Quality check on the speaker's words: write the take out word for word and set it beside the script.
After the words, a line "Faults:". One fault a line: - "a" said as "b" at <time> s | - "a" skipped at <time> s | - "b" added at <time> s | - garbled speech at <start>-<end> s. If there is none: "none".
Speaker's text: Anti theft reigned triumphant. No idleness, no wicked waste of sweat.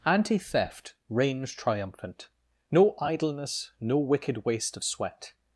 Anti theft reigns triumphant. No idleness, no wicked waste of sweat.
Faults:
- "reigned" said as "reigns" at 1.1 s